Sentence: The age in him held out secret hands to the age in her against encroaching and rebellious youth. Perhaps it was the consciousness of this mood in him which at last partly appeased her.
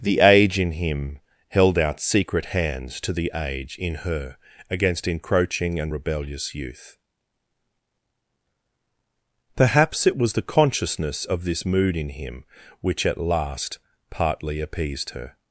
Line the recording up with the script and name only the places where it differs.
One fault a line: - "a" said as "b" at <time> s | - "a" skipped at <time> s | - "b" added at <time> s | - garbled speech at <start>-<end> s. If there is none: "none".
none